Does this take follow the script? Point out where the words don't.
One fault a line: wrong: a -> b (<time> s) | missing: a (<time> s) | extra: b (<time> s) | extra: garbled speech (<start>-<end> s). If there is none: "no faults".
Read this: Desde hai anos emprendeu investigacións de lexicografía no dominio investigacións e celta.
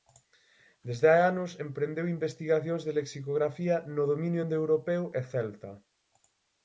wrong: investigacións -> indoeuropeo (4.4 s)